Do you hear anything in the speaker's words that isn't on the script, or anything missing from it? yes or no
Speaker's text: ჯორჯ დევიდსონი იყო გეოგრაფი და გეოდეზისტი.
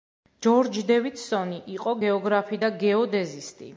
no